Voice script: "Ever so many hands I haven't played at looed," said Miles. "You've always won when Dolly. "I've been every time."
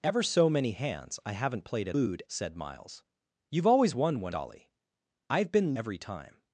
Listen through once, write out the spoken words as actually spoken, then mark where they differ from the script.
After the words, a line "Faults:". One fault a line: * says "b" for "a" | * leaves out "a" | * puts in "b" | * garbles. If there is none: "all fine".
"Ever so many hands I haven't played at looed," said Miles. "You've always won when Dolly. "I've been every time."
Faults:
all fine